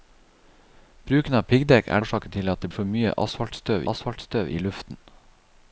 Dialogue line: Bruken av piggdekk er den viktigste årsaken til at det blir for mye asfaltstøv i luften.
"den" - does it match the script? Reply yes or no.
no